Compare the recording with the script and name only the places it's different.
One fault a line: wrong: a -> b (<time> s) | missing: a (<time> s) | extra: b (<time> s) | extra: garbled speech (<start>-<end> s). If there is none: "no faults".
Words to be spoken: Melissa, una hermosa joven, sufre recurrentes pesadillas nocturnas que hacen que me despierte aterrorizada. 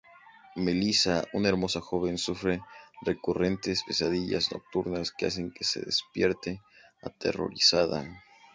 wrong: me -> se (5.6 s)